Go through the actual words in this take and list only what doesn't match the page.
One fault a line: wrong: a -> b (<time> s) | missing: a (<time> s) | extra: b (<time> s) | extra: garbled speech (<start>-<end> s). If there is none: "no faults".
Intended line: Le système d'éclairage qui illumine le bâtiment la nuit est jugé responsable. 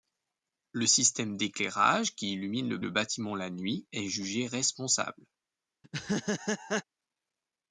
extra: le (2.8 s)